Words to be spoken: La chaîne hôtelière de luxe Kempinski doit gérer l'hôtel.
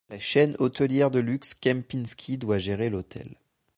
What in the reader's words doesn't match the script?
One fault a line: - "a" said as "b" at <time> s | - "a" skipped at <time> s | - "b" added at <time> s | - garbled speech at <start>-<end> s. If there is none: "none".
none